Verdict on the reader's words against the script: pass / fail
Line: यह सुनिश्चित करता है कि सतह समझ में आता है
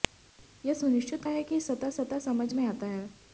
fail